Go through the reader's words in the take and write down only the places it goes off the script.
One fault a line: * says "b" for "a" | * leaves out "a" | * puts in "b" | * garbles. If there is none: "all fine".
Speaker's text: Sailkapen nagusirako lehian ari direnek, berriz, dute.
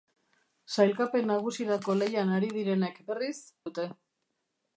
all fine